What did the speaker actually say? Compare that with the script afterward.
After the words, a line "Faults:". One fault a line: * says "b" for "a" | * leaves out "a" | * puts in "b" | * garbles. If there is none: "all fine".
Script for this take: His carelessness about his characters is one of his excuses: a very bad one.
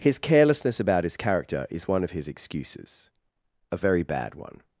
His carelessness about his character is one of his excuses: a very bad one.
Faults:
* says "character" for "characters"